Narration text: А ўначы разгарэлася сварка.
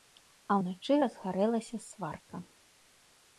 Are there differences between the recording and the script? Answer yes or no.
no